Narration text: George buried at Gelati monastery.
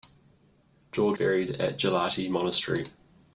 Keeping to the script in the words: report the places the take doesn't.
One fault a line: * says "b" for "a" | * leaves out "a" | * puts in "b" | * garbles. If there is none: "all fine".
all fine